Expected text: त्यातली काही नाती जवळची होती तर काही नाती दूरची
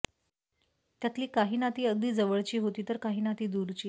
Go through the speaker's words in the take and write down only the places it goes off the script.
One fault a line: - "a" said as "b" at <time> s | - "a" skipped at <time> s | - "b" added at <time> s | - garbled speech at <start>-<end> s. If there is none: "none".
- "अगदी" added at 1.9 s